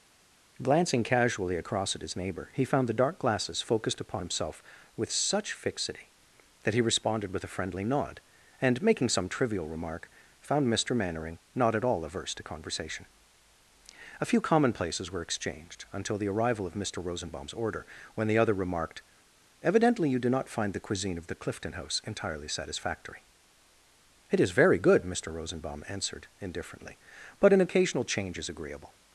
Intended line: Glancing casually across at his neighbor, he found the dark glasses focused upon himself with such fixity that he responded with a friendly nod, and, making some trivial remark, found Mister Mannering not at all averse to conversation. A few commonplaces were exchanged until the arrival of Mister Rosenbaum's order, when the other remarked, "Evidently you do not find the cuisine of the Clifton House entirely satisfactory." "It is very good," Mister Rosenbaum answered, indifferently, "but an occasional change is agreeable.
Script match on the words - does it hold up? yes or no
yes